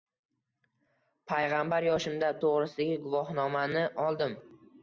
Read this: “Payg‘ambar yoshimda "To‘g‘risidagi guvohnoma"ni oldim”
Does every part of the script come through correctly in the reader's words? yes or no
yes